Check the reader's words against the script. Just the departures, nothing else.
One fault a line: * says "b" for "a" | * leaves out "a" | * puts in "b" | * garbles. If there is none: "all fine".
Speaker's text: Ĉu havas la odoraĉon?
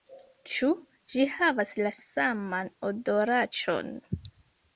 * puts in "ĝi"
* puts in "saman"